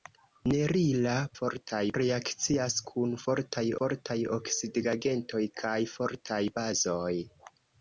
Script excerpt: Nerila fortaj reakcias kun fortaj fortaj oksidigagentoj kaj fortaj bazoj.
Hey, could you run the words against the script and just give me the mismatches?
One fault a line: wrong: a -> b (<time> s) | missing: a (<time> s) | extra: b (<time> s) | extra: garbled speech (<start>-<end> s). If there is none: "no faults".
no faults